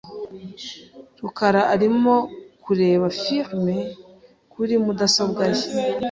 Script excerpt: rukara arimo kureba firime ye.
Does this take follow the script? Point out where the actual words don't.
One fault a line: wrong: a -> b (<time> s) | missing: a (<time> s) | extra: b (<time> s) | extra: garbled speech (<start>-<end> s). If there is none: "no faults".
extra: kuri mudasobwa (4.5 s)